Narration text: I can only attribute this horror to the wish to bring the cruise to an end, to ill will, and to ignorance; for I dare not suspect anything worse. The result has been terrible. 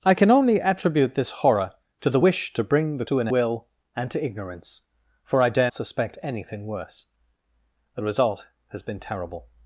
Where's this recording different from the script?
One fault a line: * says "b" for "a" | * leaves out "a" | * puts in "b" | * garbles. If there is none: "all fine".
* leaves out "cruise"
* leaves out "end to ill"
* leaves out "not"